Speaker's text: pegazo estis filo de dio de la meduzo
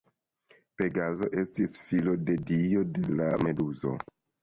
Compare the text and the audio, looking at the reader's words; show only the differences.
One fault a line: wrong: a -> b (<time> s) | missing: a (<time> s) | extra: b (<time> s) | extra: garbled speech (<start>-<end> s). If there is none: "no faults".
no faults